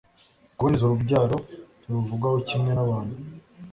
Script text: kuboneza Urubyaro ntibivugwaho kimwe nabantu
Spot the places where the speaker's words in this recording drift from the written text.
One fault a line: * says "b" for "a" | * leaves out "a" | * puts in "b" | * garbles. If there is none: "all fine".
all fine